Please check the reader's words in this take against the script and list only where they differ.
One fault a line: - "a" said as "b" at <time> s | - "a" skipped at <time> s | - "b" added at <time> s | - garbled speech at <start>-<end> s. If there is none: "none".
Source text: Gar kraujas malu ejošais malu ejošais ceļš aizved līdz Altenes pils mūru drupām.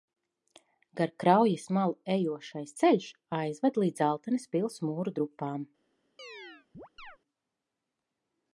- "malu ejošais" skipped at 2.7 s